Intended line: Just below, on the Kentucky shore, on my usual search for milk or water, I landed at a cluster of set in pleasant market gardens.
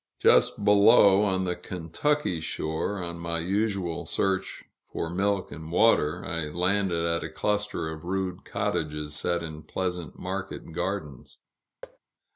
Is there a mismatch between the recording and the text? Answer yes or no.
yes